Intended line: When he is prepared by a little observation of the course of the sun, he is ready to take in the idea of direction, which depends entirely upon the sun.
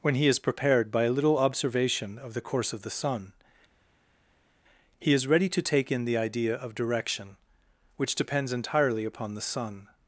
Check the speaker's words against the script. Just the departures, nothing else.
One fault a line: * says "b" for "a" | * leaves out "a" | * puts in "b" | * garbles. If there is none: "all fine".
all fine